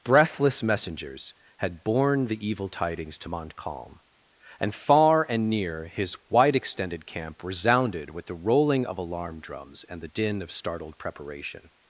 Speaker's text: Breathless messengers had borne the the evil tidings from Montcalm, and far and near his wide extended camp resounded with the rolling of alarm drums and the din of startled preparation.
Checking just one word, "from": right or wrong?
wrong